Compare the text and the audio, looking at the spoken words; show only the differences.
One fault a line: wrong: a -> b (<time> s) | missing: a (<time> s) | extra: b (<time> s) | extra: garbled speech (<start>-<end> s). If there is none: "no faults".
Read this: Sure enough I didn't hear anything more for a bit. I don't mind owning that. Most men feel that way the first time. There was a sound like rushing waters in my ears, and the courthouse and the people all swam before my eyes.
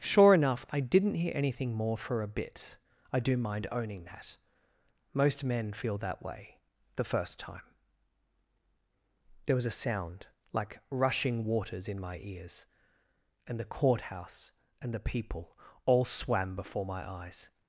wrong: don't -> do (3.2 s)